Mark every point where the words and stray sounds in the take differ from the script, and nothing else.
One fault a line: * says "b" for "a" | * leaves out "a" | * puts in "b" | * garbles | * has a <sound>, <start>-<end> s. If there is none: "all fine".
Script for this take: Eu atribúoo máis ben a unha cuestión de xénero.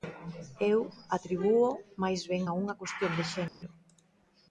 * has a dropout, 3.5-3.6 s